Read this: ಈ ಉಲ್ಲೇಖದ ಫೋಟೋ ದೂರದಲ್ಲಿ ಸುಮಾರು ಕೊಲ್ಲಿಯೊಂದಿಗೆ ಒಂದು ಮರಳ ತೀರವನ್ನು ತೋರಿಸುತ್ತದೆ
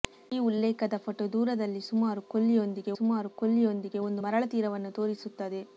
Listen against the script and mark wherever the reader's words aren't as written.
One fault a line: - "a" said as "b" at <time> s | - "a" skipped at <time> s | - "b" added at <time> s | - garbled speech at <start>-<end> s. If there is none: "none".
- "ಸುಮಾರು ಕೊಲ್ಲಿಯೊಂದಿಗೆ" added at 3.0 s